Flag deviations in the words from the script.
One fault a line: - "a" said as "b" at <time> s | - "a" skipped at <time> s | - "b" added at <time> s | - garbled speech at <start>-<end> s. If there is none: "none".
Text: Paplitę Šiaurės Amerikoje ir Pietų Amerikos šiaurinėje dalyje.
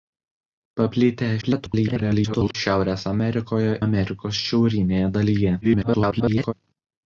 - garbled speech at 1.4-2.6 s
- "ir Pietų" skipped at 3.8 s
- garbled speech at 5.6-6.5 s